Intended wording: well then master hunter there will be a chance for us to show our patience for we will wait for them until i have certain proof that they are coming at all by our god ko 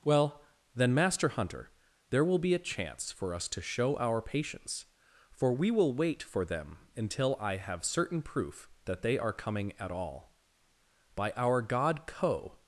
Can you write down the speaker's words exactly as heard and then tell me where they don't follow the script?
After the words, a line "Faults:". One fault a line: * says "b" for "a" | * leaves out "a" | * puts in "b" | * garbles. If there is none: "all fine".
well then master hunter there will be a chance for us to show our patience for we will wait for them until i have certain proof that they are coming at all by our god ko
Faults:
all fine